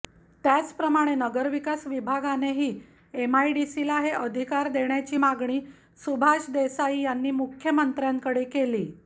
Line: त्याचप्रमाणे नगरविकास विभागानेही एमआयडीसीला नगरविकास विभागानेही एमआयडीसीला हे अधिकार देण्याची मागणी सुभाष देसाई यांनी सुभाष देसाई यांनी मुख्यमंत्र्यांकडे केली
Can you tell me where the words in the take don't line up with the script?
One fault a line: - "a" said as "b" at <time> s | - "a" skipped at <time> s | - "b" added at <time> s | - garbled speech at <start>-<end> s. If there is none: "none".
- "नगरविकास विभागानेही एमआयडीसीला" skipped at 4.0 s
- "सुभाष देसाई यांनी" skipped at 7.3 s